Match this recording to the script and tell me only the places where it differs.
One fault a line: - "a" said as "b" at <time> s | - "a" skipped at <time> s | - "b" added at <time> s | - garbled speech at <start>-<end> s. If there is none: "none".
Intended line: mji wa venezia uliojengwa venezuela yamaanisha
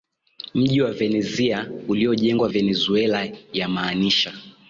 none